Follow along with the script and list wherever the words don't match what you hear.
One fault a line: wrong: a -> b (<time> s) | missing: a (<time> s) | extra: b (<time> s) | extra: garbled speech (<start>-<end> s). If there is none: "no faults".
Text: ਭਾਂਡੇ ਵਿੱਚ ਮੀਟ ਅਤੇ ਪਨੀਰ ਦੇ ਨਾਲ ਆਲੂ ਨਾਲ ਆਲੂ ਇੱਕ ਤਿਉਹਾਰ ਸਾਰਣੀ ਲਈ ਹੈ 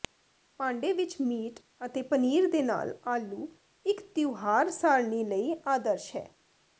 missing: ਨਾਲ ਆਲੂ (3.5 s)
extra: ਆਦਰਸ਼ (5.7 s)